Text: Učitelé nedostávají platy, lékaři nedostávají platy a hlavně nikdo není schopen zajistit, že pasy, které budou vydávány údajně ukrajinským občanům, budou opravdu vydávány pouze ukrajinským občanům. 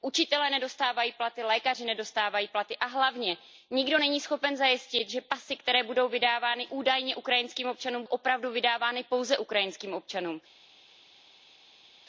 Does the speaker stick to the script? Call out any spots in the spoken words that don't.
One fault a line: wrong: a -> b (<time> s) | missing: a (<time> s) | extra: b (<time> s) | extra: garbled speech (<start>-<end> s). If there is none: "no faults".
missing: budou (8.0 s)